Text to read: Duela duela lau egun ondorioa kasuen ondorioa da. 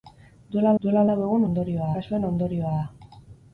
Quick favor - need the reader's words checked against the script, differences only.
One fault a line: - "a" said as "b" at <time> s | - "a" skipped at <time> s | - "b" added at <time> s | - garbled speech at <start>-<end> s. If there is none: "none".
none